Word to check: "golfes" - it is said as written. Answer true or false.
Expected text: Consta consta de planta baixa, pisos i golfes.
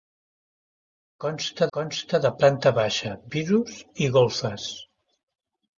true